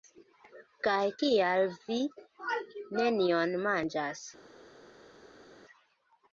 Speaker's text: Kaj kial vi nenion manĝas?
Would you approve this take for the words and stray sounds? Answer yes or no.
yes